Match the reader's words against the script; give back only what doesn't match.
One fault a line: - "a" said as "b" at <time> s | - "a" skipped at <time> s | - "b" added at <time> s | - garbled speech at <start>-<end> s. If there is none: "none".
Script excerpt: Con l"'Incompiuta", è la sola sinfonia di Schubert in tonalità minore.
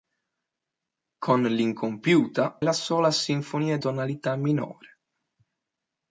- "è" skipped at 2.6 s
- "di Schubert in" skipped at 3.8 s